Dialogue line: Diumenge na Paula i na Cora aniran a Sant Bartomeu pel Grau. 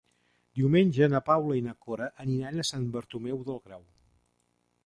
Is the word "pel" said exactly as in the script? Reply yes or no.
no